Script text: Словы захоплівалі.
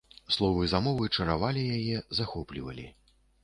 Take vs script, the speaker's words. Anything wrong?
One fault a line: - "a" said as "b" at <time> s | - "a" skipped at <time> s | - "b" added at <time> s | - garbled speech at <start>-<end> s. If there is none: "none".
- "замовы чаравалі яе" added at 0.7 s